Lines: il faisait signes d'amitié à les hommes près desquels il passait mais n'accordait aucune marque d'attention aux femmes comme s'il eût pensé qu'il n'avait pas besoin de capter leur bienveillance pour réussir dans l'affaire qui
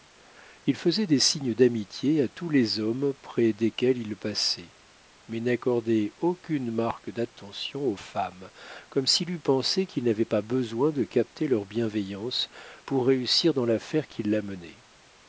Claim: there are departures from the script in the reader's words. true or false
true